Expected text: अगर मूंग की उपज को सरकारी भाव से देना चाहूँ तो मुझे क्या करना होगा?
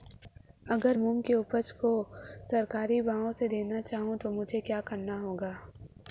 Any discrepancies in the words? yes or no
no